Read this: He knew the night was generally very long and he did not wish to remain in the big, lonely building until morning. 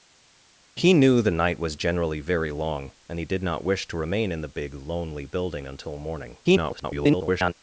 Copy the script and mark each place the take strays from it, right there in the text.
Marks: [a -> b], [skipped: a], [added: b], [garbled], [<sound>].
He knew the night was generally very long and he did not wish to remain in the big, lonely building until morning. [garbled]